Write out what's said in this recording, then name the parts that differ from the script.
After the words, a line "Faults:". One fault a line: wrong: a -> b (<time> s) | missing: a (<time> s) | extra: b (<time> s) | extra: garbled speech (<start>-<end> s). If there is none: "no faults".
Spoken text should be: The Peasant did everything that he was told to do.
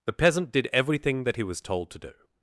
The Peasant did everything that he was told to do.
Faults:
no faults